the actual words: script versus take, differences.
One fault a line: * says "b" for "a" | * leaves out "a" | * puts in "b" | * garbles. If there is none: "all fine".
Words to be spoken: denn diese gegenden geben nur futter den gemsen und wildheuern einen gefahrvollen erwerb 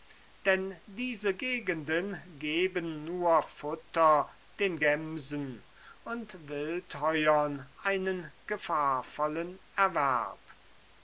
all fine